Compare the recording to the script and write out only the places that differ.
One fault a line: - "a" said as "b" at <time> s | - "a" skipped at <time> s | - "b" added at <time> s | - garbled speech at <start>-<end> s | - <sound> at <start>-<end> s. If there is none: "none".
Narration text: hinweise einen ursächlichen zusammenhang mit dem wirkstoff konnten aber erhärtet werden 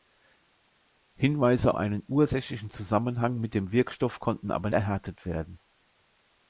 none